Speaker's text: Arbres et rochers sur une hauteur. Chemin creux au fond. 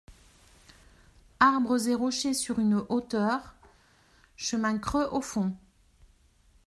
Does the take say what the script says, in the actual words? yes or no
yes